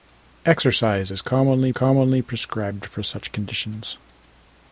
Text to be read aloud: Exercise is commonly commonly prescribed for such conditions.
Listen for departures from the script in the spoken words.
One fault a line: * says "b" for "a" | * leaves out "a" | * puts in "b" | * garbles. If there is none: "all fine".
all fine